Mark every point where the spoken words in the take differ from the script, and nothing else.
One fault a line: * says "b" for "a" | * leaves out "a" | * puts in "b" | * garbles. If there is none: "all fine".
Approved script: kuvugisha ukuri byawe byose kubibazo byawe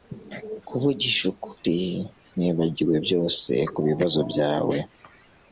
* says "nibagiwe" for "byawe"